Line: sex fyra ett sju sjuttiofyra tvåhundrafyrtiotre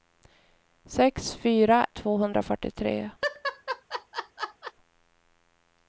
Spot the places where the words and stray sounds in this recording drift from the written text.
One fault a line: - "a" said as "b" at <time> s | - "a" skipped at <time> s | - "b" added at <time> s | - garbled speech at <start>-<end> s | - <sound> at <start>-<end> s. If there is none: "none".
- "ett sju sjuttiofyra" skipped at 1.9 s
- laugh at 3.2-4.7 s